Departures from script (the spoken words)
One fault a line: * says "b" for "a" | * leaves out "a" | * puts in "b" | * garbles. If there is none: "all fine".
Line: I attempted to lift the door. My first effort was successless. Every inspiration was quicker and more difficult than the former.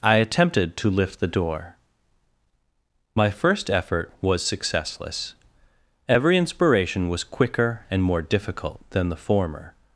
all fine